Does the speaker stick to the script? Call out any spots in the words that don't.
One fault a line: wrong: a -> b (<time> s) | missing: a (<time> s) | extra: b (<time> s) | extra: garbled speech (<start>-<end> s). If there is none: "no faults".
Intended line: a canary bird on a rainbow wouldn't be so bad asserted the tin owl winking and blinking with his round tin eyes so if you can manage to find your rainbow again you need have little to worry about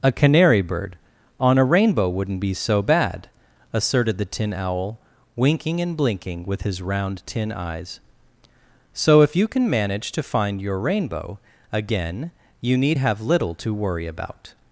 no faults